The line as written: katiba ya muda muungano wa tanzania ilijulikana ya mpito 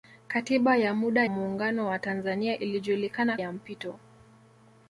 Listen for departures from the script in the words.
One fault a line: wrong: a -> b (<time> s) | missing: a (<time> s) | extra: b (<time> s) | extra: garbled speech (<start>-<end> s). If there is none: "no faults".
no faults